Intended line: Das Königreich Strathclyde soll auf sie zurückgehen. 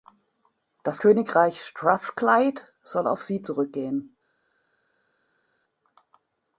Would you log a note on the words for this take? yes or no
no